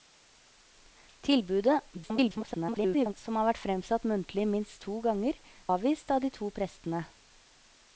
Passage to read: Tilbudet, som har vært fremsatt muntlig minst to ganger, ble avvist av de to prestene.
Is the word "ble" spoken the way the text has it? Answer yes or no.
no